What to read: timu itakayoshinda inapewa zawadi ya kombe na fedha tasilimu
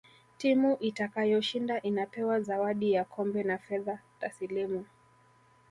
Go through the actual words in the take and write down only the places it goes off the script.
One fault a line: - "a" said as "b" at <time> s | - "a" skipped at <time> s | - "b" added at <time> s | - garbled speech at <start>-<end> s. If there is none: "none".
none